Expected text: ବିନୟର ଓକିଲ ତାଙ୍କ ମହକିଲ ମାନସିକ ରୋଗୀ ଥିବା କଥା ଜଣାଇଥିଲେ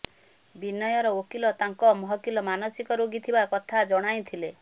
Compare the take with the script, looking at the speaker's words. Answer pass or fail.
pass